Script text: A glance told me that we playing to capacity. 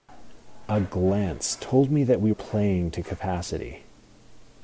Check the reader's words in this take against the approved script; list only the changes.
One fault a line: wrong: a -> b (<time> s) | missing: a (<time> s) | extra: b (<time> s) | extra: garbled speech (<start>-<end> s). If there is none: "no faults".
no faults